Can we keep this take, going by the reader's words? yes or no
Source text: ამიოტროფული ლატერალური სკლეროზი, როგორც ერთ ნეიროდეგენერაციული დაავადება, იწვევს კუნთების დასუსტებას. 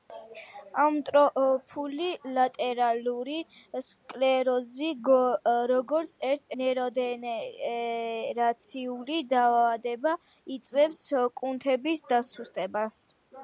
yes